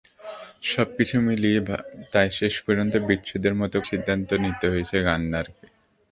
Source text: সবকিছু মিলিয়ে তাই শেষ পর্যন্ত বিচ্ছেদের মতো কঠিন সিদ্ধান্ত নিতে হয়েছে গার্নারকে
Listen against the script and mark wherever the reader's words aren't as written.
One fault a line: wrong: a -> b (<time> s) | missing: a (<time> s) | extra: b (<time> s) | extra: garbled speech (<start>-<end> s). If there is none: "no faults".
missing: কঠিন (3.8 s)